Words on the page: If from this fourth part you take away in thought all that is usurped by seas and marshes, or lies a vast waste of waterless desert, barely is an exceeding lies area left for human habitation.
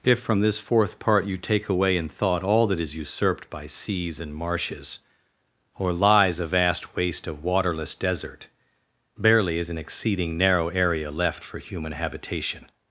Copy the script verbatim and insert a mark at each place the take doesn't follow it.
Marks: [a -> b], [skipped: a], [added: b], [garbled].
If from this fourth part you take away in thought all that is usurped by seas and marshes, or lies a vast waste of waterless desert, barely is an exceeding [lies -> narrow] area left for human habitation.